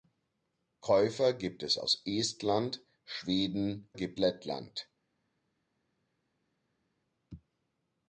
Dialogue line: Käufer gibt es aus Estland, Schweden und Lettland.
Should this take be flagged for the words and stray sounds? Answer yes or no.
yes